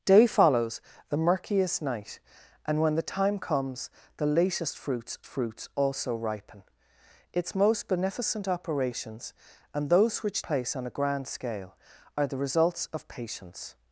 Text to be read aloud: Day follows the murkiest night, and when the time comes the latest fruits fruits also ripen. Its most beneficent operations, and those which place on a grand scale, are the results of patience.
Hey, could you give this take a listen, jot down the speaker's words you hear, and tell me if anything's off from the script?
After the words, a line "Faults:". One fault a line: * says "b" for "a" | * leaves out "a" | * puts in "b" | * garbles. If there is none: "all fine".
Day follows the murkiest night, and when the time comes the latest fruits fruits also ripen. Its most beneficent operations, and those which place on a grand scale, are the results of patience.
Faults:
all fine